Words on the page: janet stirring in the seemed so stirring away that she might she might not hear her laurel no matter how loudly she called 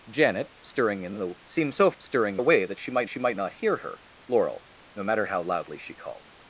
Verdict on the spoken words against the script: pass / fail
pass